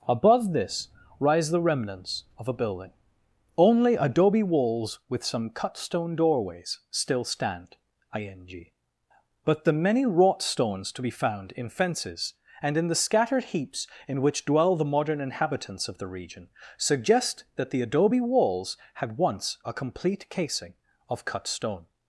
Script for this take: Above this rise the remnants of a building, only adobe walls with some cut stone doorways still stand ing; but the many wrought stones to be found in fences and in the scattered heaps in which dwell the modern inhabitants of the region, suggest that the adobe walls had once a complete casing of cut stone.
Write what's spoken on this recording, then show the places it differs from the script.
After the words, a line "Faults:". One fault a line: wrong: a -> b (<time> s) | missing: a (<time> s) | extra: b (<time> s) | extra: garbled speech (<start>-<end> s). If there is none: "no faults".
Above this rise the remnants of a building, only adobe walls with some cut stone doorways still stand ing; but the many wrought stones to be found in fences and in the scattered heaps in which dwell the modern inhabitants of the region, suggest that the adobe walls had once a complete casing of cut stone.
Faults:
no faults